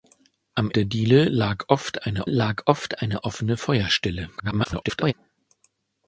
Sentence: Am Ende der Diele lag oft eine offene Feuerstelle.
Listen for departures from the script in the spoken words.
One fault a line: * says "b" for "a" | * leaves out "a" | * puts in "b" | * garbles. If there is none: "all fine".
* leaves out "Ende"
* puts in "lag oft eine"
* garbles